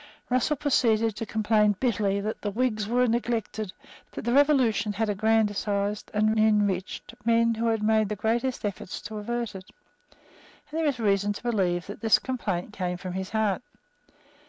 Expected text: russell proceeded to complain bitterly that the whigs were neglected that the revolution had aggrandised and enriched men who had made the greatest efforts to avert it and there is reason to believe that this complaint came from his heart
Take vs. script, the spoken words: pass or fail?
pass